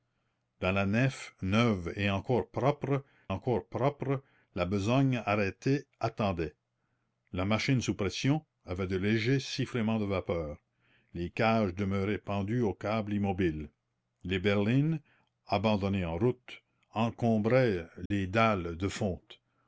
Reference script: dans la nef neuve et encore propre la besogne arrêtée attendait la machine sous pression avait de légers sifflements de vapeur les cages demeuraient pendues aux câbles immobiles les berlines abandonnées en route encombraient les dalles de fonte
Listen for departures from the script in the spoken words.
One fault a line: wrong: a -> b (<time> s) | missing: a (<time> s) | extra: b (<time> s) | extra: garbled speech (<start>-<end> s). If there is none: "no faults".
extra: encore propre (3.3 s)